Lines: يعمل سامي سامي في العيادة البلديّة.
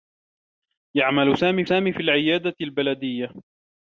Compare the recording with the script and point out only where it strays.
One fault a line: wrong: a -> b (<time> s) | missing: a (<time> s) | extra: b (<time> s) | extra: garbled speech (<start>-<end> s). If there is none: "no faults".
no faults